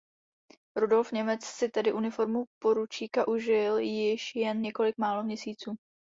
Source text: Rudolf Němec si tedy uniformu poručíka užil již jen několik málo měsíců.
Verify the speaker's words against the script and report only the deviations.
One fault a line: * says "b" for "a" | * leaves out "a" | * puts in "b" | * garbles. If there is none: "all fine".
all fine